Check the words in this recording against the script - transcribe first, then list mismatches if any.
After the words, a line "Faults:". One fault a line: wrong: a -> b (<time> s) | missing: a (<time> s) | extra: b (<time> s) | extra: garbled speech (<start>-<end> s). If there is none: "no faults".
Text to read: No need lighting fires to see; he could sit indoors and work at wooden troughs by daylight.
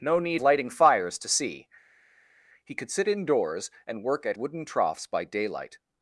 No need lighting fires to see; he could sit indoors and work at wooden troughs by daylight.
Faults:
no faults